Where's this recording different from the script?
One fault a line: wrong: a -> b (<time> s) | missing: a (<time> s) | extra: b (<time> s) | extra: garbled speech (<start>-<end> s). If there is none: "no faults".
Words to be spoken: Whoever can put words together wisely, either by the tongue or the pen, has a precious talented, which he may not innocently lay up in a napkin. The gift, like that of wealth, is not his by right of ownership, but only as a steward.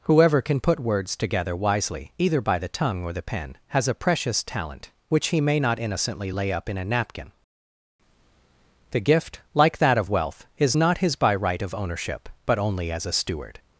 wrong: talented -> talent (4.4 s)